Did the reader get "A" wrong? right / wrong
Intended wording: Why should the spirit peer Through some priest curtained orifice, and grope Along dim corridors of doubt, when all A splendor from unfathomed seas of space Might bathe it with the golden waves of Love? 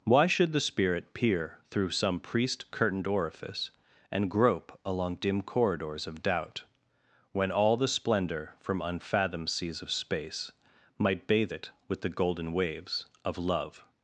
wrong